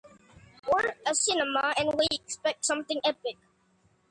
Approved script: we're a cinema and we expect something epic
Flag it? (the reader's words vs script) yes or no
no